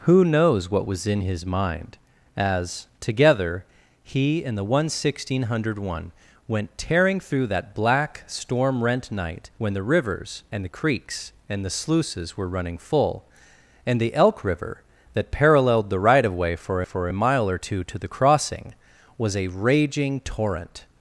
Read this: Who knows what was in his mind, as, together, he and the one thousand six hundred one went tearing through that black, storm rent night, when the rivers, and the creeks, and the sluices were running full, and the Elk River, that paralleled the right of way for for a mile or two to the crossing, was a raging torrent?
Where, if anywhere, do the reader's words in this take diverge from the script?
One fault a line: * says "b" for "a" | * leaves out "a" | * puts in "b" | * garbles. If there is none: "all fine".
all fine